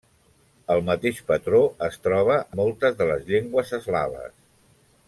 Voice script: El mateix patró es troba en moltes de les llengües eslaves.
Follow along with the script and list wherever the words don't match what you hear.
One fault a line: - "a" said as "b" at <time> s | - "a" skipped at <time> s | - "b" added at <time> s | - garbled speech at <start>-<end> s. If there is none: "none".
- "en" skipped at 2.4 s